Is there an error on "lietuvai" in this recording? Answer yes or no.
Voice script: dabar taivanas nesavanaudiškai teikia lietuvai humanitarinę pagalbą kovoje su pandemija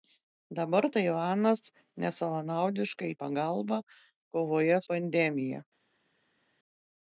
yes